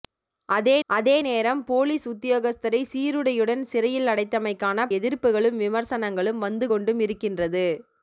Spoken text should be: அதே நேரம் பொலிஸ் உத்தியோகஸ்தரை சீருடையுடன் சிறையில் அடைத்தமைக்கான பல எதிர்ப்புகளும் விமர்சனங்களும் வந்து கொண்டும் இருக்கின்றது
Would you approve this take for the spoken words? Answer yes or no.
no